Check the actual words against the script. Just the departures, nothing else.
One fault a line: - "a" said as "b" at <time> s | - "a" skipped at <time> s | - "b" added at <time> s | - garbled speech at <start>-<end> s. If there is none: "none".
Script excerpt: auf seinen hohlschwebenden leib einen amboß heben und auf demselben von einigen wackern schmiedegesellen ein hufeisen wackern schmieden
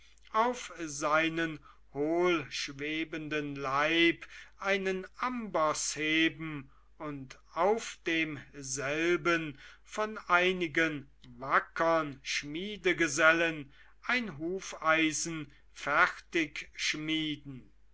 - "wackern" said as "fertig" at 15.7 s